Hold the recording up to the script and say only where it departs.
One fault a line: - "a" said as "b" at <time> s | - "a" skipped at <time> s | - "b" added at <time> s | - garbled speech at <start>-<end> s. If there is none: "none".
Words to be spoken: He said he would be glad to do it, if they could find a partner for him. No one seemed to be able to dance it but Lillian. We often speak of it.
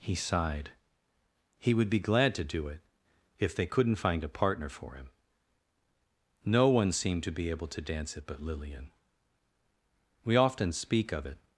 - "said" said as "sighed" at 0.1 s
- "could" said as "couldn't" at 3.7 s